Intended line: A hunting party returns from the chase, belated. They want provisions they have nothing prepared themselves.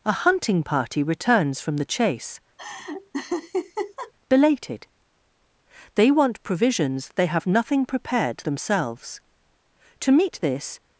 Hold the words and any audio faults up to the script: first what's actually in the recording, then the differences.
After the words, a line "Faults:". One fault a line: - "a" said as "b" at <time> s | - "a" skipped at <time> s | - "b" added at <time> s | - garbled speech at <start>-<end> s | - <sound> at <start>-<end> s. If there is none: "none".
A hunting party returns from the chase, belated. They want provisions they have nothing prepared themselves. To meet this
Faults:
- laugh at 2.6-4.1 s
- "To meet this" added at 10.0 s